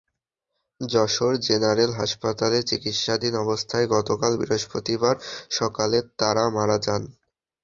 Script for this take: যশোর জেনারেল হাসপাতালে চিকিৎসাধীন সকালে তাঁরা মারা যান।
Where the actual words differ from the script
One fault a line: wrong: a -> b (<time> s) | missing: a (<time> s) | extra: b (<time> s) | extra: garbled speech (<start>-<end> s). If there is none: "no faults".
extra: অবস্থায় গতকাল বৃহস্পতিবার (3.4 s)